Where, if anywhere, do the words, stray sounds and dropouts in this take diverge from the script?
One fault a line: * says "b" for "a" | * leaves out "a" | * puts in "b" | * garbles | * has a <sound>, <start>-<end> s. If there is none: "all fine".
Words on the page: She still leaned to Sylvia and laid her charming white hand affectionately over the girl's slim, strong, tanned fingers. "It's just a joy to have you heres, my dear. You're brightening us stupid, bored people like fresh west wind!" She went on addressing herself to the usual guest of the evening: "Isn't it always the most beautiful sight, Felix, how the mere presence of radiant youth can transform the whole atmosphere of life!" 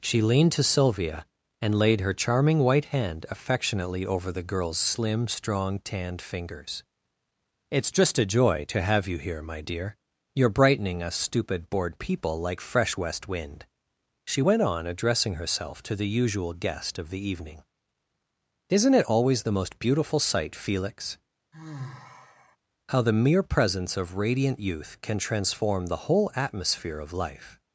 * leaves out "still"
* says "here" for "heres"
* has a sigh, 21.5-22.6 s